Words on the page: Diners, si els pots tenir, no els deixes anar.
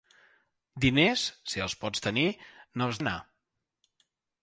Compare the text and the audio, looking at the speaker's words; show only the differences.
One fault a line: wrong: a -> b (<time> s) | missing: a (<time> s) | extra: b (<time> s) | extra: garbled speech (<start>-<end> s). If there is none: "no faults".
missing: deixes (3.0 s)